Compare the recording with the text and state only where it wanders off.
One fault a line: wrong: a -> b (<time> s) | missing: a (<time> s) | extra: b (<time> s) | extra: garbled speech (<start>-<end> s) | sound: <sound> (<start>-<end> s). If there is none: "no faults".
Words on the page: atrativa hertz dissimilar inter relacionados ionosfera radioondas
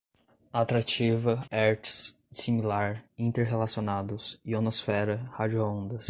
no faults